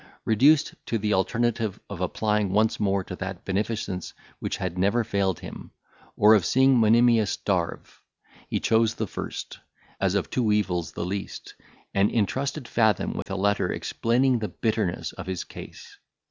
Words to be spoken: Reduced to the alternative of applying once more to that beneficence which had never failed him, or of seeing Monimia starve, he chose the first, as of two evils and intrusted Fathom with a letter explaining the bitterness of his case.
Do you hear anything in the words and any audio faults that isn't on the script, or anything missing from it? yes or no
yes